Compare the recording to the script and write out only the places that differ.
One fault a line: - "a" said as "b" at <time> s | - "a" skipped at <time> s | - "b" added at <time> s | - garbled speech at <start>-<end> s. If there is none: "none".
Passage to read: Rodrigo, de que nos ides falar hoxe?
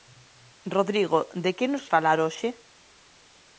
- "ides" skipped at 1.9 s